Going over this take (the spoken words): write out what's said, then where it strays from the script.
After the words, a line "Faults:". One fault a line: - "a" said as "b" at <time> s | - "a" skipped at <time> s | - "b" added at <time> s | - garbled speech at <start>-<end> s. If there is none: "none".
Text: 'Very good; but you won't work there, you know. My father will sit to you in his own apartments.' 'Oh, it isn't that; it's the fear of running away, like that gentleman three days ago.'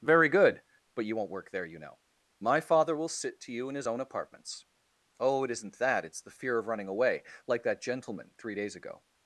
'Very good; but you won't work there, you know. My father will sit to you in his own apartments.' 'Oh, it isn't that; it's the fear of running away, like that gentleman three days ago.'
Faults:
none